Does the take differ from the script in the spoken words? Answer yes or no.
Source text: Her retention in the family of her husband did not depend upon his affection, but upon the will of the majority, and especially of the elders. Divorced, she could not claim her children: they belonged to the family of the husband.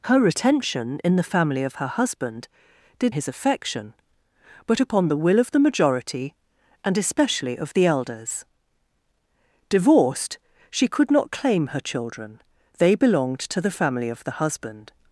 yes